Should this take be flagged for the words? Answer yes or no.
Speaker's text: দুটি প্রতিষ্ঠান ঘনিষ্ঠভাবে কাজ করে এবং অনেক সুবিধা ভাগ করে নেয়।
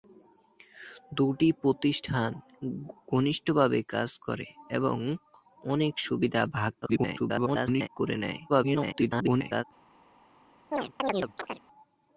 yes